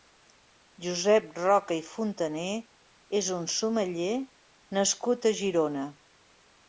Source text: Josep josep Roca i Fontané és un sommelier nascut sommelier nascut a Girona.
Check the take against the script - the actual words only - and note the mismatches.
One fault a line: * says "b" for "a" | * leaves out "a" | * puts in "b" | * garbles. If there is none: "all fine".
* leaves out "josep"
* leaves out "sommelier nascut"